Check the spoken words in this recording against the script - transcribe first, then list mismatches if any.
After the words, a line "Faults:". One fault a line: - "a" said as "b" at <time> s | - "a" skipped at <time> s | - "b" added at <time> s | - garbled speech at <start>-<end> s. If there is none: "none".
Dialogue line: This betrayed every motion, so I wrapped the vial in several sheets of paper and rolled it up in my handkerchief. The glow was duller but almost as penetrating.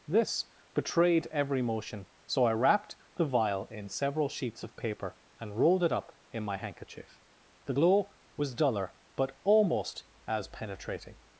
This betrayed every motion, so I wrapped the vial in several sheets of paper and rolled it up in my handkerchief. The glow was duller but almost as penetrating.
Faults:
none